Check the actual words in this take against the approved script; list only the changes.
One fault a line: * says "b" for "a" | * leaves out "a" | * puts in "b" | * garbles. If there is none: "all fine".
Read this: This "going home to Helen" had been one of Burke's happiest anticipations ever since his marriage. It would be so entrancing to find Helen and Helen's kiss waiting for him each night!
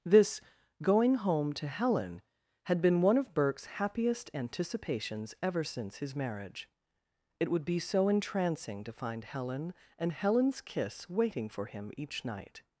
all fine